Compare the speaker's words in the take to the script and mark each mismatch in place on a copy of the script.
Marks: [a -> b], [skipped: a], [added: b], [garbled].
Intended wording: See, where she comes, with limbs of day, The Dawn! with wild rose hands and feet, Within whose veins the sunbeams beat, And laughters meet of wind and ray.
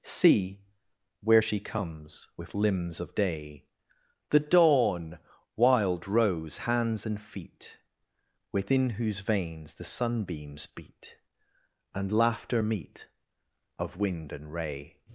See, where she comes, with limbs of day, The Dawn! [skipped: with] wild rose hands and feet, Within whose veins the sunbeams beat, And [laughters -> laughter] meet of wind and ray.